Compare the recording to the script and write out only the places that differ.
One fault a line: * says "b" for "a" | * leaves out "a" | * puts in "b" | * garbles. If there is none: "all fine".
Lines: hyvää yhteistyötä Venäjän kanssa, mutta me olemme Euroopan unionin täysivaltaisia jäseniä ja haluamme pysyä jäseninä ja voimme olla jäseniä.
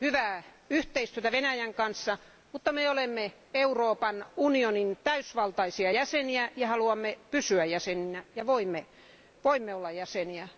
all fine